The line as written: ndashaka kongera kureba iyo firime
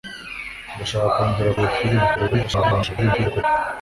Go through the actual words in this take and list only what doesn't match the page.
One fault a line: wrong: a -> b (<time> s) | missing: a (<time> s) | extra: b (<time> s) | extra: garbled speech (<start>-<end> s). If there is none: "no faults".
missing: kureba (1.5 s)
extra: garbled speech (2.1-3.4 s)